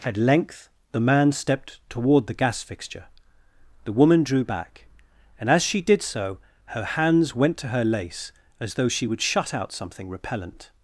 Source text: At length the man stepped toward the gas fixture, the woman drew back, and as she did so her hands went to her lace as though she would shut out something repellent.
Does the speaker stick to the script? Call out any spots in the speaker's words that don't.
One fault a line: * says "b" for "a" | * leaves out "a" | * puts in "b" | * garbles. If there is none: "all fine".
all fine